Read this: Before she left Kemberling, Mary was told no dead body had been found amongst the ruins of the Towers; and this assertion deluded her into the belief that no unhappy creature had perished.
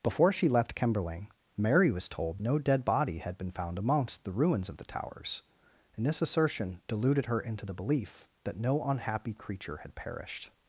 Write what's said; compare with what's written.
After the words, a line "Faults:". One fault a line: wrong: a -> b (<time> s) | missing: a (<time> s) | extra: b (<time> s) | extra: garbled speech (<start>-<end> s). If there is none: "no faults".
Before she left Kemberling, Mary was told no dead body had been found amongst the ruins of the Towers; and this assertion deluded her into the belief that no unhappy creature had perished.
Faults:
no faults